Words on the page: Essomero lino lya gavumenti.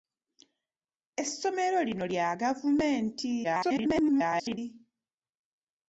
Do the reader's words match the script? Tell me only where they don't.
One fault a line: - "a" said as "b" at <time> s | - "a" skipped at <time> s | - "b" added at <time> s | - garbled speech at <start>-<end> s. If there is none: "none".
- garbled speech at 3.4-4.6 s